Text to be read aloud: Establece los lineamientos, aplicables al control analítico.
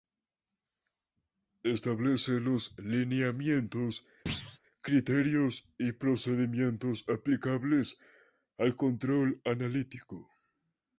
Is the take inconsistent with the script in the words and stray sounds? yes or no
yes